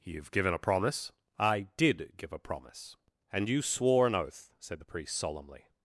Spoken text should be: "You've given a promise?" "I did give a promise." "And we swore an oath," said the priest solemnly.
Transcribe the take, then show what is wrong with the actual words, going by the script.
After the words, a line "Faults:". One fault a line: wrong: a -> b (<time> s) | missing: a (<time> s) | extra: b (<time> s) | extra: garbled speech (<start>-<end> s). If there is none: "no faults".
"You've given a promise?" "I did give a promise." "And you swore an oath," said the priest solemnly.
Faults:
wrong: we -> you (3.5 s)